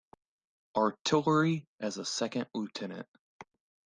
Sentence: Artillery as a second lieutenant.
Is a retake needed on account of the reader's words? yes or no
no